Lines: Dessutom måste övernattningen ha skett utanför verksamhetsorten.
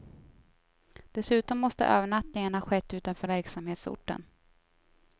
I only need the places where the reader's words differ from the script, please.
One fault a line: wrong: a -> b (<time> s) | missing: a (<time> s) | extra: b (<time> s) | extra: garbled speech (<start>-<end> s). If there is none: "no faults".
no faults